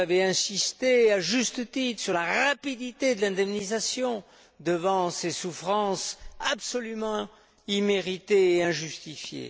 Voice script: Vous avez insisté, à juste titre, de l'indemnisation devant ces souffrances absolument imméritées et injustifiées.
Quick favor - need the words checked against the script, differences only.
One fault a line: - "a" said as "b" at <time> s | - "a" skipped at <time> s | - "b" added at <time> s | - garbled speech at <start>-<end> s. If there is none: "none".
- "sur la rapidité" added at 2.0 s